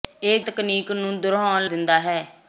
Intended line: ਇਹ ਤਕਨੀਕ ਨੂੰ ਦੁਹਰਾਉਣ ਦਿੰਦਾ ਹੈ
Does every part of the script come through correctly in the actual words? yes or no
yes